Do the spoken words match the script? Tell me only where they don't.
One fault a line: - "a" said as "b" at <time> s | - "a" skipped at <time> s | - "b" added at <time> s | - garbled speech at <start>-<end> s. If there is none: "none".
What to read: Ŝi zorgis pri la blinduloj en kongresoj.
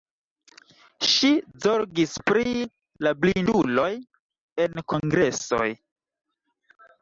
none